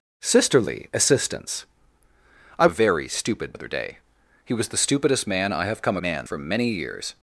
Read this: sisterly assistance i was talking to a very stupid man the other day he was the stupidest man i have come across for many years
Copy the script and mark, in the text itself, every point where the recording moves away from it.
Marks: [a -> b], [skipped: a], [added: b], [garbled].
sisterly assistance i [skipped: was talking to] a very stupid [skipped: man the] other day he was the stupidest man i have come [across -> man] for many years